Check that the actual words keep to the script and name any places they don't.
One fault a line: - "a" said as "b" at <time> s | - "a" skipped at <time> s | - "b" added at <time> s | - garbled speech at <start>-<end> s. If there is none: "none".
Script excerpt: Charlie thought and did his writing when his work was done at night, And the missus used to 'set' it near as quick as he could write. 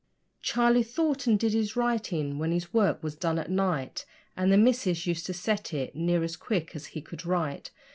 none